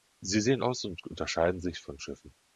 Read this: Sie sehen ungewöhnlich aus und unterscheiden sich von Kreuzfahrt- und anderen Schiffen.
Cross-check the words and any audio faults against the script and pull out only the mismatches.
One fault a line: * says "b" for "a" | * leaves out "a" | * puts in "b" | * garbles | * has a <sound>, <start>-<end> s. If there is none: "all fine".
* leaves out "ungewöhnlich"
* leaves out "Kreuzfahrt und anderen"